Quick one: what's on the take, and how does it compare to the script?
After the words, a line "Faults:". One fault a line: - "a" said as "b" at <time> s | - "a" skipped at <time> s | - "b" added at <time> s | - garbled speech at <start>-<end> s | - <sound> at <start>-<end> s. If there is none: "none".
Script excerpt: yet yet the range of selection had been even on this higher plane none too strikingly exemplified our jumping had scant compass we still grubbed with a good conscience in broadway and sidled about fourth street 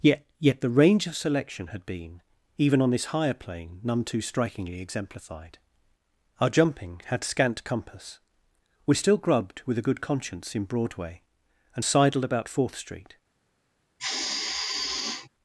yet yet the range of selection had been even on this higher plane none too strikingly exemplified our jumping had scant compass we still grubbed with a good conscience in broadway and sidled about fourth street
Faults:
- sigh at 14.0-15.3 s